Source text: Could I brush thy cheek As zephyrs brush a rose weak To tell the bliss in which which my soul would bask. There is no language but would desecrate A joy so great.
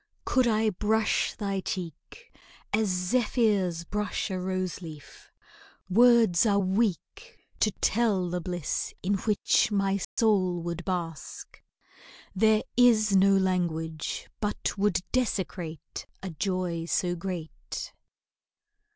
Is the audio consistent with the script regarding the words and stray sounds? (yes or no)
no